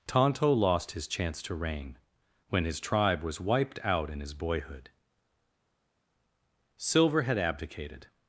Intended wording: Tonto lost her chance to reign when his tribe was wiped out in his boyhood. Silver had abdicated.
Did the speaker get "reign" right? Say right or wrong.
right